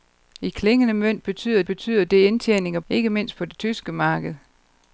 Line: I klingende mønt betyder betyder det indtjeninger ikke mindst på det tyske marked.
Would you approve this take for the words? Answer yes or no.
yes